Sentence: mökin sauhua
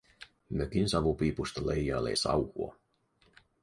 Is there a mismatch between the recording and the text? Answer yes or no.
yes